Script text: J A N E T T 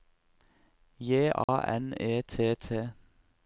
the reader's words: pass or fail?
pass